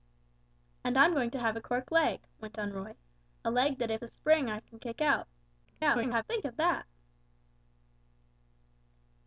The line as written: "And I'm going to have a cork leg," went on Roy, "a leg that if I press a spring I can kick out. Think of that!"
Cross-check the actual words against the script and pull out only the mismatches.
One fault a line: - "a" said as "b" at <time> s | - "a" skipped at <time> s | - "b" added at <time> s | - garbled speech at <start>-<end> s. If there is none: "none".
- "I press" skipped at 4.0 s
- garbled speech at 5.6-6.2 s